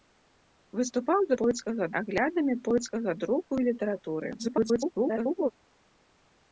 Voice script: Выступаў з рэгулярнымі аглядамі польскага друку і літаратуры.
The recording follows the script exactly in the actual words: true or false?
false